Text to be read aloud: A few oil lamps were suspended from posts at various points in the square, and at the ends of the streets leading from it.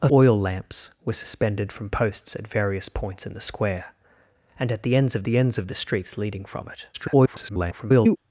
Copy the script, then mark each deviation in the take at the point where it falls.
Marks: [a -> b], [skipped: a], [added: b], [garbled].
A [skipped: few] oil lamps were suspended from posts at various points in the square, and at the ends of the [added: ends of the] streets leading from it. [garbled]